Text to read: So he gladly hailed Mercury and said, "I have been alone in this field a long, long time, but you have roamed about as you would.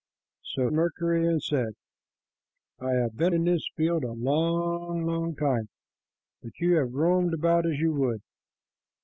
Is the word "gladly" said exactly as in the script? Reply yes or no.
no